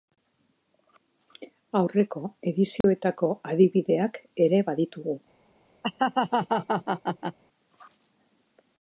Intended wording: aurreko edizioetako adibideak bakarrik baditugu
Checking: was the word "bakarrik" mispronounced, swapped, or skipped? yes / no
yes